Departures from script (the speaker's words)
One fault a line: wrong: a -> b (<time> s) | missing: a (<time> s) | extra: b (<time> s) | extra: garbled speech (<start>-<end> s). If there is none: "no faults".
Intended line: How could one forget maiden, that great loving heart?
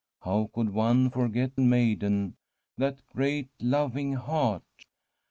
no faults